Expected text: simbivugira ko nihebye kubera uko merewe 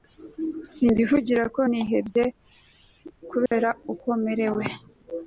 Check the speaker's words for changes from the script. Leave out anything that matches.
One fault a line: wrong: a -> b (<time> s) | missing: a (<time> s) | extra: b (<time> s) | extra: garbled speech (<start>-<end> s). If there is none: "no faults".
no faults